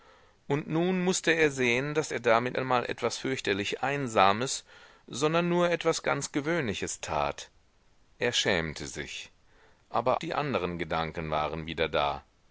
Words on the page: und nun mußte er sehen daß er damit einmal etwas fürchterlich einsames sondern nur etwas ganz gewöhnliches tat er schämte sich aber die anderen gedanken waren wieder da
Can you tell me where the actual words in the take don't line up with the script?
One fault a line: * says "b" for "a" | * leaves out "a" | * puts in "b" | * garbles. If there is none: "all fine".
all fine